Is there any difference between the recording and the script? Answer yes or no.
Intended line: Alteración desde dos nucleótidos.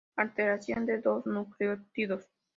yes